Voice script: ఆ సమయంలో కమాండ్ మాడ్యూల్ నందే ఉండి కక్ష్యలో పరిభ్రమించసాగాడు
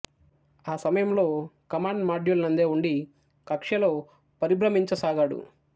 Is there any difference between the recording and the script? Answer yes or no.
no